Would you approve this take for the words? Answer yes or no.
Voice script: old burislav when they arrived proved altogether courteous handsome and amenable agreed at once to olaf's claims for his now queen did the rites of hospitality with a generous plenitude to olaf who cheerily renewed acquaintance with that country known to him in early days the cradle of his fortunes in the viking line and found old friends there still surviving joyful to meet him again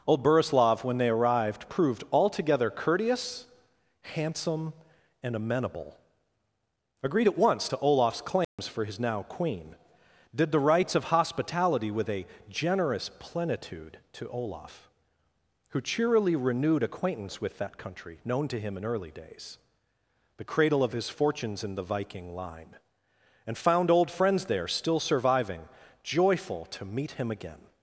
yes